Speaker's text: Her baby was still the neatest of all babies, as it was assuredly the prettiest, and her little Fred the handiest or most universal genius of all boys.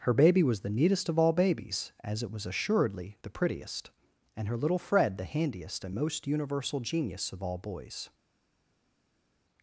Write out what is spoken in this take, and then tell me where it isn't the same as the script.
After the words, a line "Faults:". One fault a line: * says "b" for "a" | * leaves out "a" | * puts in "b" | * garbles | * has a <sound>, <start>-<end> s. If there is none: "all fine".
Her baby was the neatest of all babies, as it was assuredly the prettiest, and her little Fred the handiest and most universal genius of all boys.
Faults:
* leaves out "still"
* says "and" for "or"